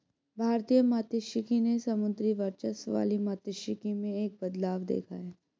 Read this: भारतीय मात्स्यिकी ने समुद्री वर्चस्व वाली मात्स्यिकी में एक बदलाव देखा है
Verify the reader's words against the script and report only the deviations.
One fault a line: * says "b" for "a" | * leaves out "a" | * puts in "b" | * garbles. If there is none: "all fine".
all fine